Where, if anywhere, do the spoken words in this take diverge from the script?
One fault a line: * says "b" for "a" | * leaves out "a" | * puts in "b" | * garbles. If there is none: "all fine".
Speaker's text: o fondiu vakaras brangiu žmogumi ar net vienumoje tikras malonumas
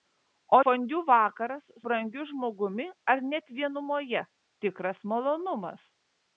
all fine